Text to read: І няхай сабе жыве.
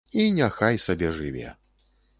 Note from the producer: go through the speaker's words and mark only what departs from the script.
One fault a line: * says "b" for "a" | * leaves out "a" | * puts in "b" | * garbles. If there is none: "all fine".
all fine